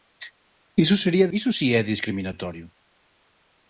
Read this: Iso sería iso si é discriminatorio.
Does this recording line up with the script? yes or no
yes